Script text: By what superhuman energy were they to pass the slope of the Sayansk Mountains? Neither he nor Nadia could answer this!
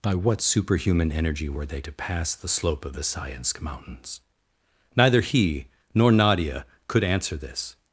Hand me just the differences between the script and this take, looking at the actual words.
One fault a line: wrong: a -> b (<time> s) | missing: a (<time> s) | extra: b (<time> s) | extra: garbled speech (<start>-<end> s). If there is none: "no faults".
no faults